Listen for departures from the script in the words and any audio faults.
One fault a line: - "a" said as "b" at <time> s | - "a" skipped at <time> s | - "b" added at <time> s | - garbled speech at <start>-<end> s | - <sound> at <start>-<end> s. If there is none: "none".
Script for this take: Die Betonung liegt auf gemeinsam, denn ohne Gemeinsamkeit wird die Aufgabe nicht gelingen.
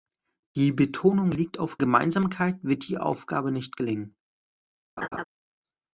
- "gemeinsam denn ohne" skipped at 1.8 s
- laugh at 5.0-5.2 s